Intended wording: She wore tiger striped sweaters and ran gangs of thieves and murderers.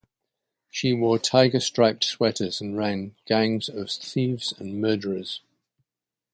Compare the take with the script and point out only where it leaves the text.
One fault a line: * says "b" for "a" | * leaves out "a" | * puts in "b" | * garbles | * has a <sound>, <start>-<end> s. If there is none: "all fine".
all fine